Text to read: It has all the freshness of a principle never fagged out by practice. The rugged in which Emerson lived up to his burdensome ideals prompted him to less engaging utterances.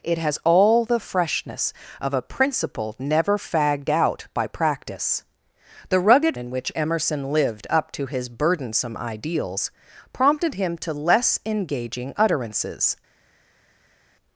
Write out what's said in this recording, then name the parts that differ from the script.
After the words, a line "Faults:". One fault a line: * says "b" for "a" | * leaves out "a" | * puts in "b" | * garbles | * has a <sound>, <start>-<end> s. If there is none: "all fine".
It has all the freshness of a principle never fagged out by practice. The rugged in which Emerson lived up to his burdensome ideals prompted him to less engaging utterances.
Faults:
all fine